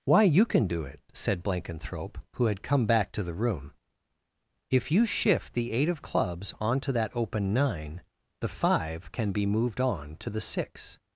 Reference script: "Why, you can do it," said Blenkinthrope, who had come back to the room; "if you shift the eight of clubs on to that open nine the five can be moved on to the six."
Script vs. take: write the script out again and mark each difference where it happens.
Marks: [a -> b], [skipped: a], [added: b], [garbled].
"Why, you can do it," said Blenkinthrope, who had come back to the room; "if you shift the eight of clubs on to that open nine the five can be moved on to the six."